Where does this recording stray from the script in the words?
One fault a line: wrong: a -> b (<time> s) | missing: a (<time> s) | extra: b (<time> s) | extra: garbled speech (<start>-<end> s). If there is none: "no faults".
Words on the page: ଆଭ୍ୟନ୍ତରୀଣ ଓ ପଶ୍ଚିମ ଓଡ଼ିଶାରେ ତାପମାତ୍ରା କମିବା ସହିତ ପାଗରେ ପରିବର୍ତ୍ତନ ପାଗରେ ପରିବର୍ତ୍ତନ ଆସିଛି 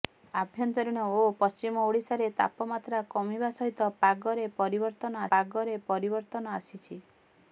no faults